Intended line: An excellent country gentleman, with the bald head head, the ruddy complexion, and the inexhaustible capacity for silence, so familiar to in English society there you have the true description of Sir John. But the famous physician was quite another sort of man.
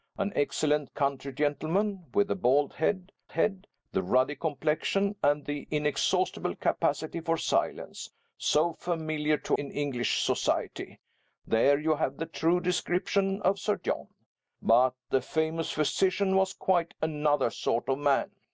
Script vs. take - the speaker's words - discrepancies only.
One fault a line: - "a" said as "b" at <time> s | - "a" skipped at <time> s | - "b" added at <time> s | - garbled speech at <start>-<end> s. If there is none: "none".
none